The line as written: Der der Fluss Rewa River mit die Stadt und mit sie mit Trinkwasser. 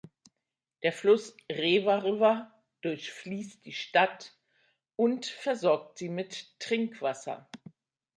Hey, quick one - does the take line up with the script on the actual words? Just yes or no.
no